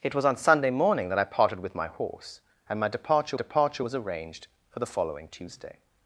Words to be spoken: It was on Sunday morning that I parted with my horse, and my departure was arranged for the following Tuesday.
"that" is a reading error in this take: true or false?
false